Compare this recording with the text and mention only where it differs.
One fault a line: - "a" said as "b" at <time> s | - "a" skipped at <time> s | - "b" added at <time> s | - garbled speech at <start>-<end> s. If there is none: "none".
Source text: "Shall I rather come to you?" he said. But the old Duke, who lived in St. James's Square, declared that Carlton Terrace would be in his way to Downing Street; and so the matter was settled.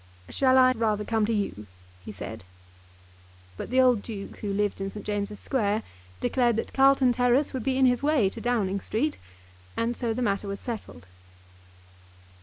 none